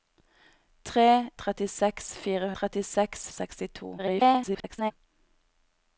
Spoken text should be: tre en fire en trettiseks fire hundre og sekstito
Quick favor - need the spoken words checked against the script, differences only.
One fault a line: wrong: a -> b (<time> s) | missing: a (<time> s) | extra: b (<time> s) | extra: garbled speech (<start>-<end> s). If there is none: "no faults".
wrong: en -> trettiseks (1.4 s)
missing: en (2.5 s)
missing: fire hundre (3.2 s)
extra: garbled speech (4.0-4.9 s)